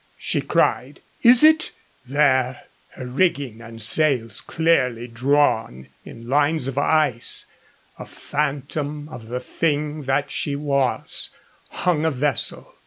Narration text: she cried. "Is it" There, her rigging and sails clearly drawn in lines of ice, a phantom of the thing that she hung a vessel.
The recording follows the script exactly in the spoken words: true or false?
false